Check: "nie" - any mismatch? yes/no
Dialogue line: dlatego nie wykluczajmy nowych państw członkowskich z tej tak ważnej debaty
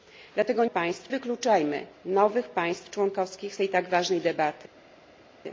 yes